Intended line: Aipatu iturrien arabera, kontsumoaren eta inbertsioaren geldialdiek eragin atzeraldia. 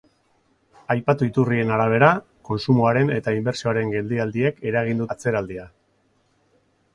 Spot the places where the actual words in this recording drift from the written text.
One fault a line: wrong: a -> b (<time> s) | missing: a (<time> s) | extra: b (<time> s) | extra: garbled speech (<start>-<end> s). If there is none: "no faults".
no faults